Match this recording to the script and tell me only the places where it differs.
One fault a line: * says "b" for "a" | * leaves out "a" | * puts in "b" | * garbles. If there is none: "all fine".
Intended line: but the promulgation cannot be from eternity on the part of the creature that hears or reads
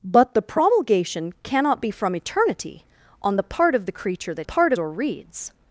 * says "part" for "hears"